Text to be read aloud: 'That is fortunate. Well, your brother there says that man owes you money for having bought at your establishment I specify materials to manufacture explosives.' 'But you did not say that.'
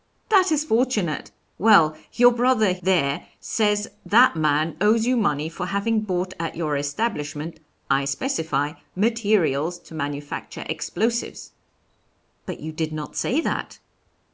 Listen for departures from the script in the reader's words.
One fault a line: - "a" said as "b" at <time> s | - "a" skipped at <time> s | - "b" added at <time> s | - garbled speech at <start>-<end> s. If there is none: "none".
none